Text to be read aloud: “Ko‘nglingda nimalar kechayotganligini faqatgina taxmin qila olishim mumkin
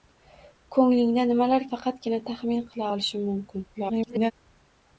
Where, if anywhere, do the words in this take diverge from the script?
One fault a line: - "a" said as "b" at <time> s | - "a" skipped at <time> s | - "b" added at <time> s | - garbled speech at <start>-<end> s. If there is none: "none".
- "kechayotganligini" skipped at 1.6 s
- garbled speech at 3.7-4.3 s